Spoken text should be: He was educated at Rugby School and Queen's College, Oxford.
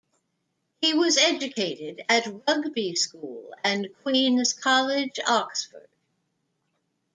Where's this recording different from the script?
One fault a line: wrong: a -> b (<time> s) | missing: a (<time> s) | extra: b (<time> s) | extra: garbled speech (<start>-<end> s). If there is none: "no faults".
no faults